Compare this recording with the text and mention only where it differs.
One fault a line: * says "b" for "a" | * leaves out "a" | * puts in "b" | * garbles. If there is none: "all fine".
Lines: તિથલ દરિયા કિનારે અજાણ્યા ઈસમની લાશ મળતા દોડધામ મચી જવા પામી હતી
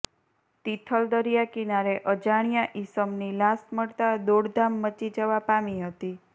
all fine